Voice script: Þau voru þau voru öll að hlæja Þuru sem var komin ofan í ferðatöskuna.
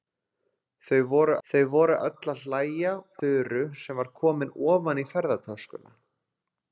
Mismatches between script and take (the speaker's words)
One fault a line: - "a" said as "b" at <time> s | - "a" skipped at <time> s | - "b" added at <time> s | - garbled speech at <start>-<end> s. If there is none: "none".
none